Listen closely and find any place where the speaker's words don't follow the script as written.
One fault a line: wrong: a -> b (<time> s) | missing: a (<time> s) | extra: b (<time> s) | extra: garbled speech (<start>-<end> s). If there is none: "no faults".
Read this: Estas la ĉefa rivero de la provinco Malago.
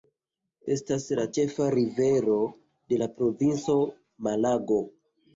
no faults